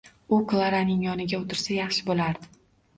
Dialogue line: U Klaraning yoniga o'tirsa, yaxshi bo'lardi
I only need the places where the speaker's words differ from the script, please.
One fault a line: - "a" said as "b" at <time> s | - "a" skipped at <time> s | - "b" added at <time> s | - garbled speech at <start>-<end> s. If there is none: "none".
none